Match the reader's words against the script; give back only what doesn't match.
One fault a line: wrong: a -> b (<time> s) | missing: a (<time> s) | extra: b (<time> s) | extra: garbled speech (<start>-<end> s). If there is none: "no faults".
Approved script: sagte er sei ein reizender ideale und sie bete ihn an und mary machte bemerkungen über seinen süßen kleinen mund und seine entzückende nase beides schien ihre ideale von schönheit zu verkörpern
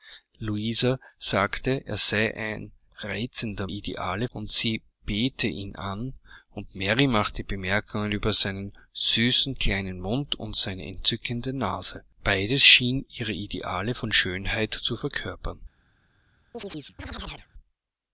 no faults